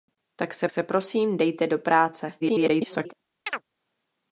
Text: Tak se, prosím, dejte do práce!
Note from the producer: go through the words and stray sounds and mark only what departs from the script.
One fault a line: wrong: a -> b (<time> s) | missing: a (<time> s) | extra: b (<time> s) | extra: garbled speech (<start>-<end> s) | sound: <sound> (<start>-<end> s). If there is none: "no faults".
extra: se (0.7 s)
extra: garbled speech (2.4-3.1 s)
sound: chirp (3.5-3.6 s)